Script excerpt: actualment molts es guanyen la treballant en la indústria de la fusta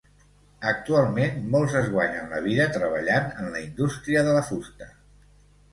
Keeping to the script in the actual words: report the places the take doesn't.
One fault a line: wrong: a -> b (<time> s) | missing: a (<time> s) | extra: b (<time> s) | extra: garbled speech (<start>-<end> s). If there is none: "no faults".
extra: vida (2.5 s)